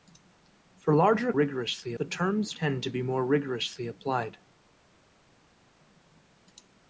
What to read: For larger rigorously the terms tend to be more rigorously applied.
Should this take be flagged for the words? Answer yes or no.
no